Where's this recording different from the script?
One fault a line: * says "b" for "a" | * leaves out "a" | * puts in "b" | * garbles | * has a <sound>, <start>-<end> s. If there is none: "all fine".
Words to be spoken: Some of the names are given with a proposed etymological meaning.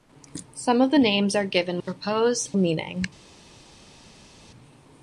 * leaves out "with"
* leaves out "etymological"